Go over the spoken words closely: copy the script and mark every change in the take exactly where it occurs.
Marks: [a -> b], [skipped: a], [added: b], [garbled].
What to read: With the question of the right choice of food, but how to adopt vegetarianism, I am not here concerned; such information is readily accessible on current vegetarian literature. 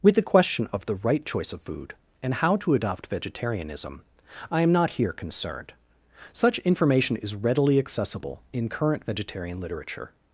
With the question of the right choice of food, [but -> and] how to adopt vegetarianism, I am not here concerned; such information is readily accessible [on -> in] current vegetarian literature.